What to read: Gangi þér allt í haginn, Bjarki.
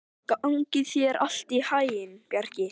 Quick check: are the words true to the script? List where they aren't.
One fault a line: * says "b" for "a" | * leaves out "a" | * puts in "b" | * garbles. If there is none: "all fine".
all fine